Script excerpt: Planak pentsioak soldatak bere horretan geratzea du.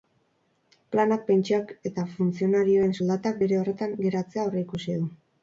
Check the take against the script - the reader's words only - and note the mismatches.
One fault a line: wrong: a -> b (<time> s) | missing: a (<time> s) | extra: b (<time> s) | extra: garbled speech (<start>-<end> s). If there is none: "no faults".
extra: eta funtzionarioen (1.9 s)
extra: aurreikusi (4.5 s)